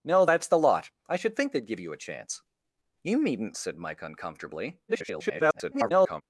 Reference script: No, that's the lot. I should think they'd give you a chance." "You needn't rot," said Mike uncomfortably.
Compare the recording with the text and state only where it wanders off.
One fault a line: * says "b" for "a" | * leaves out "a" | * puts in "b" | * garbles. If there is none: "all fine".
* leaves out "rot"
* garbles